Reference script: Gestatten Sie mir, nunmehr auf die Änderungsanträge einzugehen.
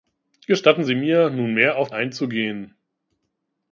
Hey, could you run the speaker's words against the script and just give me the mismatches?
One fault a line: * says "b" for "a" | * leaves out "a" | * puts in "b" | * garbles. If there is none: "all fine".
* leaves out "die Änderungsanträge"